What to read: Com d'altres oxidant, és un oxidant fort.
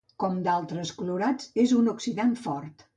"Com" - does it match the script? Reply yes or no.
yes